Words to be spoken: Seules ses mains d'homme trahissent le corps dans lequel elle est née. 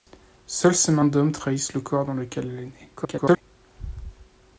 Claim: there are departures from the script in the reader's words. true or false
true